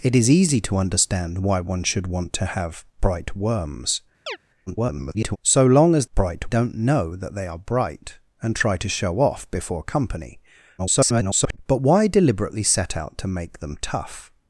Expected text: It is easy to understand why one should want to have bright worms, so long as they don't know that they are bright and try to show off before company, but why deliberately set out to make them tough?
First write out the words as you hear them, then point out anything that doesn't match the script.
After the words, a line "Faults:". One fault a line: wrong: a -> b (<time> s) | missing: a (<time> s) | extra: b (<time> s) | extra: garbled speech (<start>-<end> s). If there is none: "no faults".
It is easy to understand why one should want to have bright worms, [garbled] so long as bright don't know that they are bright and try to show off before company, [garbled] but why deliberately set out to make them tough?
Faults:
extra: garbled speech (4.7-5.4 s)
wrong: they -> bright (6.2 s)
extra: garbled speech (10.8-11.6 s)